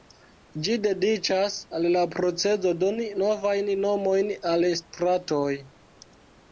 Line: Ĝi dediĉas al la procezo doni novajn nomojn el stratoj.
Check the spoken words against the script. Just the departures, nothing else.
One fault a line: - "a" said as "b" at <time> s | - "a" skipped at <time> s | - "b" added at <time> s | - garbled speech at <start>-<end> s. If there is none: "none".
- "el" said as "al" at 4.5 s